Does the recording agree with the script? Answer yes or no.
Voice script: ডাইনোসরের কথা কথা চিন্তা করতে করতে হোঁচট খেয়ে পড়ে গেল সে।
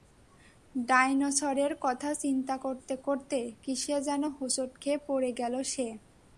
no